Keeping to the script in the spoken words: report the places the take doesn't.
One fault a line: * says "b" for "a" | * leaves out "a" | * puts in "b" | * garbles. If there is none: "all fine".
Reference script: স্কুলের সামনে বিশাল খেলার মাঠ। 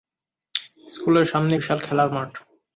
all fine